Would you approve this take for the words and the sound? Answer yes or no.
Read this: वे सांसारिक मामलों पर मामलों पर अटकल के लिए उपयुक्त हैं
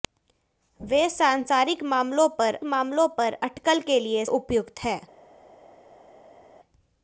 yes